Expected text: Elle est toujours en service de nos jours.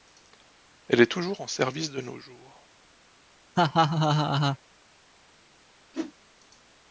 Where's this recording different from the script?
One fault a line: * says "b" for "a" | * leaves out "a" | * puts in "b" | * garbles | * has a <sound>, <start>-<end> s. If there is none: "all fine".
* has a laugh, 3.6-4.6 s
* has a whoosh, 5.9-6.1 s